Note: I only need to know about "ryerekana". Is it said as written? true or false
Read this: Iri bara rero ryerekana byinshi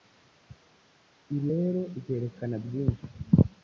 true